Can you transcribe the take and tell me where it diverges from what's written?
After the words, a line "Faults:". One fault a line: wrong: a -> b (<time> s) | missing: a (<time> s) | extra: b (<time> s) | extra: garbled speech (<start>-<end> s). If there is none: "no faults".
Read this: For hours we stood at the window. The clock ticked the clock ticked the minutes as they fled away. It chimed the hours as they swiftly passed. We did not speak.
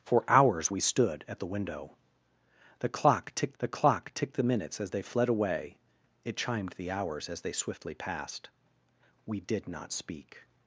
For hours we stood at the window. The clock ticked the clock ticked the minutes as they fled away. It chimed the hours as they swiftly passed. We did not speak.
Faults:
no faults